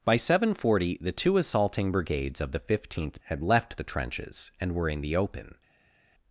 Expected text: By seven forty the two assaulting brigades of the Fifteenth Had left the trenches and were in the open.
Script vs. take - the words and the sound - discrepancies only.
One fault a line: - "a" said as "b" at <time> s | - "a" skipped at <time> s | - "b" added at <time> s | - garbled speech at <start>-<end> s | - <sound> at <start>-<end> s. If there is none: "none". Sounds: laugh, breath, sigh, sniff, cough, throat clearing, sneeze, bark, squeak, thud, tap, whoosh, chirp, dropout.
none